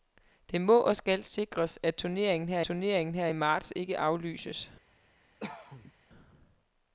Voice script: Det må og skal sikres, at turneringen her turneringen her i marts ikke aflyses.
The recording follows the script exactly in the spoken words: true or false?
true